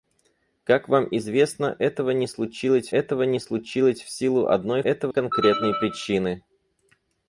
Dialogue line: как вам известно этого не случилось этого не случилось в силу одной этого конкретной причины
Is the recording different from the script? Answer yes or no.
no